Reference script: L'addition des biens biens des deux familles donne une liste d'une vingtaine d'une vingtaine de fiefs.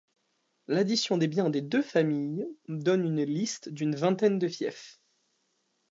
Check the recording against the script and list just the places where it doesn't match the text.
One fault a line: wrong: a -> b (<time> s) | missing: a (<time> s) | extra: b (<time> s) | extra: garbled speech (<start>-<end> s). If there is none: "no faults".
missing: biens (1.5 s)
missing: d'une vingtaine (4.4 s)